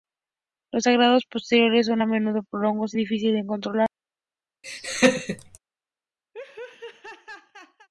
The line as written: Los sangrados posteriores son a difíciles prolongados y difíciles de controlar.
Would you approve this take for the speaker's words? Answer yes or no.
no